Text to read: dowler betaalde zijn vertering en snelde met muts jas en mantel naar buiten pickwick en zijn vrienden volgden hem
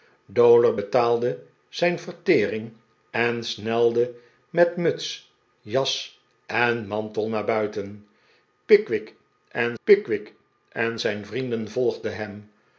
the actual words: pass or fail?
fail